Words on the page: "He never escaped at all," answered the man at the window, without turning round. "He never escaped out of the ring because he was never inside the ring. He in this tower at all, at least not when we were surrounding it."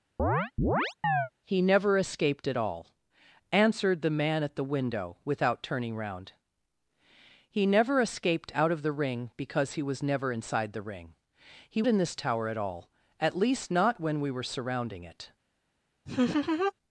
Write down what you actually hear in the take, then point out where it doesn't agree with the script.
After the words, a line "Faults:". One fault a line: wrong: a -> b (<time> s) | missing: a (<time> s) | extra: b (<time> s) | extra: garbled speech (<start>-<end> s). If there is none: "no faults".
"He never escaped at all," answered the man at the window, without turning round. "He never escaped out of the ring because he was never inside the ring. He in this tower at all, at least not when we were surrounding it."
Faults:
no faults